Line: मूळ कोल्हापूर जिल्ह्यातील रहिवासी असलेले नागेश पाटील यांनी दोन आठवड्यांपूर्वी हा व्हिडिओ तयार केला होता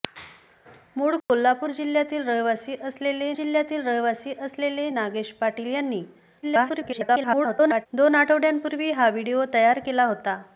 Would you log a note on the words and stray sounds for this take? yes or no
yes